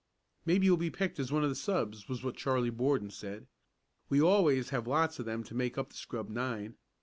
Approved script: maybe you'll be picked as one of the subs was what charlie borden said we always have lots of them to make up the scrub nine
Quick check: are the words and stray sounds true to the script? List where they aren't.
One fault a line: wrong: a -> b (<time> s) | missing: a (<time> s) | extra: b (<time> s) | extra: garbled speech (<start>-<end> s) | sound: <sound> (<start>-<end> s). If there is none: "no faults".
no faults